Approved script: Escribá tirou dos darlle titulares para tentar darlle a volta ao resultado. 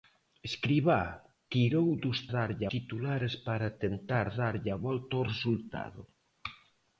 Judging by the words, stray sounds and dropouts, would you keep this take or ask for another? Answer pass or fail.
pass